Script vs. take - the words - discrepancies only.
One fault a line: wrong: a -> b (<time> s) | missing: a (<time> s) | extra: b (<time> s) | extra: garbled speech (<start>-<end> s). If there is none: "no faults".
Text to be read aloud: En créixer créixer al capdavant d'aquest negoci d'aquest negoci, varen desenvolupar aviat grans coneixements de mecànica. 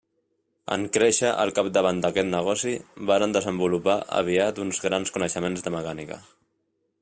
missing: créixer (1.3 s)
missing: d'aquest negoci (2.7 s)
extra: uns (4.7 s)